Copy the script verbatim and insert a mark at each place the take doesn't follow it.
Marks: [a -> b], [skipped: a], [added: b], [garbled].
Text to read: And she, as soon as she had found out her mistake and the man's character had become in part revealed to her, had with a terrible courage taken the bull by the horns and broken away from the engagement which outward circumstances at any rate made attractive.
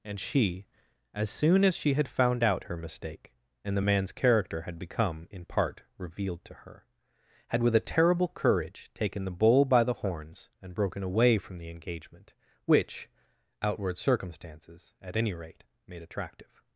And she, as soon as she had found out her mistake and the man's character had become in part revealed to her, had with a terrible courage taken the bull by the horns and broken away from the engagement which outward circumstances at any rate made attractive.